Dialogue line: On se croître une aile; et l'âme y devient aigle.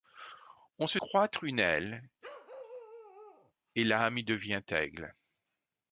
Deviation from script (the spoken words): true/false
false